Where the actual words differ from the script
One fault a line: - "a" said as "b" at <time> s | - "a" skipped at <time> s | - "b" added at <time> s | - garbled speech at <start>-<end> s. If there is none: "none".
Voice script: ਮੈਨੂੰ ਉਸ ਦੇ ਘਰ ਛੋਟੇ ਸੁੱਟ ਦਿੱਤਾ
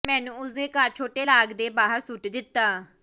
- "ਲਾਗ ਦੇ ਬਾਹਰ" added at 1.2 s